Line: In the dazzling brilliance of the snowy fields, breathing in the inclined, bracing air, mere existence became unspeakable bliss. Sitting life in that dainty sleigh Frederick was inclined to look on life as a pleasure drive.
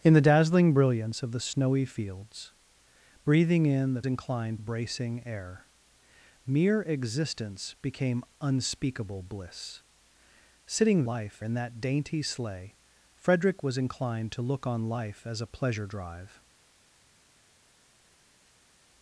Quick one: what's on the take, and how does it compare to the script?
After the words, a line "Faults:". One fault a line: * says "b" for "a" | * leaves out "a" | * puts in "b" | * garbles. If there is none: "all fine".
In the dazzling brilliance of the snowy fields, breathing in the inclined, bracing air, mere existence became unspeakable bliss. Sitting life in that dainty sleigh Frederick was inclined to look on life as a pleasure drive.
Faults:
all fine